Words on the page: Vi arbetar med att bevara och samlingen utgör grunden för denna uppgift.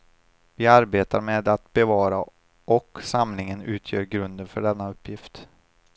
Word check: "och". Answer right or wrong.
right